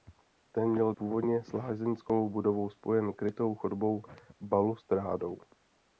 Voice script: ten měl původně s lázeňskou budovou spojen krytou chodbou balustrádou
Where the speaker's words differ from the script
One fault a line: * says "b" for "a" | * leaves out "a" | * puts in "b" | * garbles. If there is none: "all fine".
all fine